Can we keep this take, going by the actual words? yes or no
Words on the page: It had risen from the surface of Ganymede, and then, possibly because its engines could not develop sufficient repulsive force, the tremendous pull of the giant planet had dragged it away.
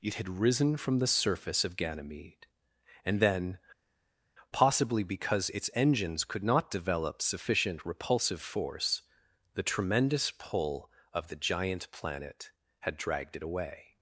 yes